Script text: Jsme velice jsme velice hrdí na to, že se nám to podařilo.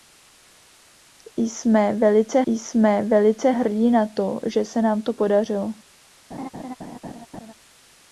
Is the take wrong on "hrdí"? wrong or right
right